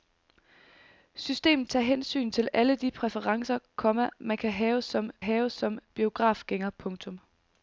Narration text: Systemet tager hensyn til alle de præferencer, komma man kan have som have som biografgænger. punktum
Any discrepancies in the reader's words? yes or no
no